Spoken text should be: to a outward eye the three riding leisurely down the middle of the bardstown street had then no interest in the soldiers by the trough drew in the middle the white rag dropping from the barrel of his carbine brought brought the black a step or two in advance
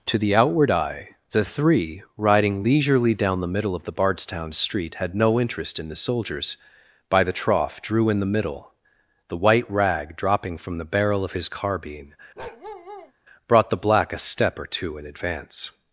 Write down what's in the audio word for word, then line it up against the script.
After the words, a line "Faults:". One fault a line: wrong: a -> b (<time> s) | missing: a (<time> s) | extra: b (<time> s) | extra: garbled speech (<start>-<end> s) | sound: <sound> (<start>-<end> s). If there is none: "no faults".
to the outward eye the three riding leisurely down the middle of the bardstown street had no interest in the soldiers by the trough drew in the middle the white rag dropping from the barrel of his carbine brought the black a step or two in advance
Faults:
wrong: a -> the (0.2 s)
missing: then (5.2 s)
sound: bark (12.4-13.1 s)
missing: brought (13.7 s)